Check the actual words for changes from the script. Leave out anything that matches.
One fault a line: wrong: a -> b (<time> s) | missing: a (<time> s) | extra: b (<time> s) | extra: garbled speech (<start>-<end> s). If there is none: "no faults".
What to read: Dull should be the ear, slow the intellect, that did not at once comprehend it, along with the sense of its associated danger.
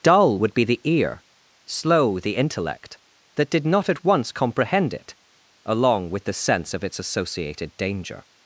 wrong: should -> would (0.4 s)